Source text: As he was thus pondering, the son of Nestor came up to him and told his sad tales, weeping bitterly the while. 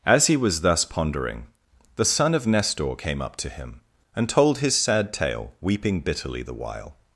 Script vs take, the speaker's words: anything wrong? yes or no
yes